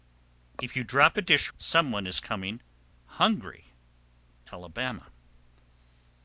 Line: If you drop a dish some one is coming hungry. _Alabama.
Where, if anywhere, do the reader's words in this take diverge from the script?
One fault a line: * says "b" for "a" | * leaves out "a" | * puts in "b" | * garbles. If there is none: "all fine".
all fine